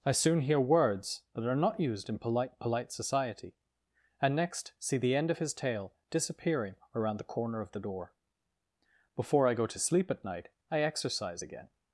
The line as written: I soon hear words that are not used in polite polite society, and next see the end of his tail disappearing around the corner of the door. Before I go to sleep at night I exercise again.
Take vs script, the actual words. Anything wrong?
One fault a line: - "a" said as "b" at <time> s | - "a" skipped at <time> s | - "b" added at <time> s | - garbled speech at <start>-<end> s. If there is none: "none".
none